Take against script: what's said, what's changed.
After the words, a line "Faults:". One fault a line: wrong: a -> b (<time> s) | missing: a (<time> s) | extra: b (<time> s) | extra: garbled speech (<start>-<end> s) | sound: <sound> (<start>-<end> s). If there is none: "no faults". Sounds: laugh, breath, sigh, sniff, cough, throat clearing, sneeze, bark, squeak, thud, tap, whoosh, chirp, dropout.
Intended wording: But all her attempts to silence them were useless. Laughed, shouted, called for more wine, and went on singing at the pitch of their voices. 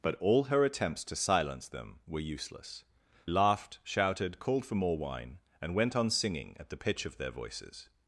But all her attempts to silence them were useless. Laughed, shouted, called for more wine, and went on singing at the pitch of their voices.
Faults:
no faults